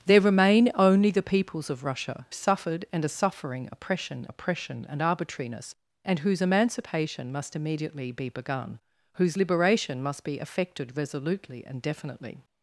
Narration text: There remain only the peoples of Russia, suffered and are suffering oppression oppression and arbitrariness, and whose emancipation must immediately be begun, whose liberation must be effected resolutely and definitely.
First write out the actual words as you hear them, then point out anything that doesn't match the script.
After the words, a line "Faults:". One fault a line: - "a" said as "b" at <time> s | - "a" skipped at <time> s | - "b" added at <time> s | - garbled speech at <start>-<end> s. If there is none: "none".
There remain only the peoples of Russia, suffered and are suffering oppression oppression and arbitrariness, and whose emancipation must immediately be begun, whose liberation must be effected resolutely and definitely.
Faults:
none